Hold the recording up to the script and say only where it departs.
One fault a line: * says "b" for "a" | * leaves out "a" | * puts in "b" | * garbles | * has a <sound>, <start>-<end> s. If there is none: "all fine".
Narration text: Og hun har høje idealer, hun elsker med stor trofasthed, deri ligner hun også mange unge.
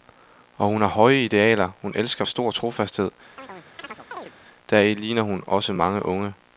* leaves out "med"
* has a chirp, 3.4-4.3 s